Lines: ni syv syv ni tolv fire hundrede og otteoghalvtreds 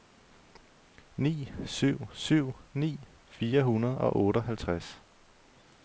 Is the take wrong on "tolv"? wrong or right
wrong